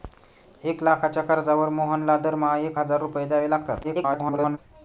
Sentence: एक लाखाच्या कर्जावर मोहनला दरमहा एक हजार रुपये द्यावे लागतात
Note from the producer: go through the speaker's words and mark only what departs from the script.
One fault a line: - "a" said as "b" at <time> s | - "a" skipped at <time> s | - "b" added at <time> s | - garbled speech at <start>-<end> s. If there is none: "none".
- garbled speech at 3.8-4.6 s